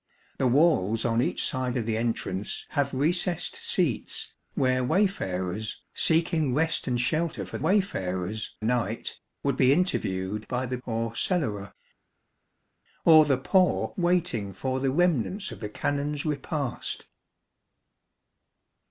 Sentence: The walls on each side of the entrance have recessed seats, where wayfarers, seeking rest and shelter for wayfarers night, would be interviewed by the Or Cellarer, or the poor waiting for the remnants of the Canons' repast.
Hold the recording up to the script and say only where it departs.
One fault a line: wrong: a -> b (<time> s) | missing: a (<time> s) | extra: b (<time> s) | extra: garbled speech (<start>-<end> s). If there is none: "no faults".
no faults